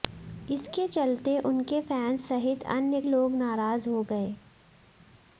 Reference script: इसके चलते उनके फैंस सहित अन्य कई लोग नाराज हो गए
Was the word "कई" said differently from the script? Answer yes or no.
yes